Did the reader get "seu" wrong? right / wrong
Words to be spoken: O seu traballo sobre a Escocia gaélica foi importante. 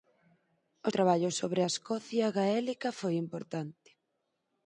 wrong